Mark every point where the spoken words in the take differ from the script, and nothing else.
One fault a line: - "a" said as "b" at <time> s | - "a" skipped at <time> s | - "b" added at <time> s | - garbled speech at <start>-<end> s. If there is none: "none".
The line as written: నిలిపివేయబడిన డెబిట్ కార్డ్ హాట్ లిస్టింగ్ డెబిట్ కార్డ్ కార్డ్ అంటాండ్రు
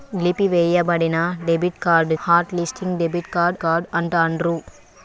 none